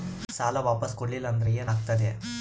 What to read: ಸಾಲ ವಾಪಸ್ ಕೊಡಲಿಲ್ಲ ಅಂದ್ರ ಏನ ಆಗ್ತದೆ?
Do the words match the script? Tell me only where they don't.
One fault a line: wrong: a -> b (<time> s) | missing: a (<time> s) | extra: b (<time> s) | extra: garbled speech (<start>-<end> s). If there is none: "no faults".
no faults